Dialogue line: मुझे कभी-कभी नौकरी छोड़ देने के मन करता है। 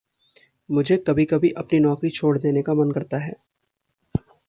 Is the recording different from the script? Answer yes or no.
yes